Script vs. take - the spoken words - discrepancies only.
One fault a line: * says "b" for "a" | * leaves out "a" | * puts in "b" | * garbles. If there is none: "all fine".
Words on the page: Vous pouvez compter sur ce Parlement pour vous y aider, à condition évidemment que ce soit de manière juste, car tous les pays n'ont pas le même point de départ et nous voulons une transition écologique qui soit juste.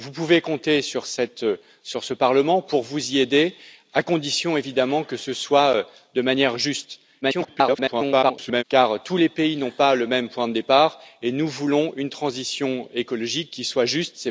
* garbles